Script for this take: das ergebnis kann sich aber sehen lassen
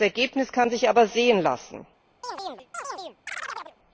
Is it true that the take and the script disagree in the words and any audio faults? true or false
true